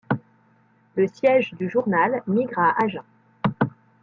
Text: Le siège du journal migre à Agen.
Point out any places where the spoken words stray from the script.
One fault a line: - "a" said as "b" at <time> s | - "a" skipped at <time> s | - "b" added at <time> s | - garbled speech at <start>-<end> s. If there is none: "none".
none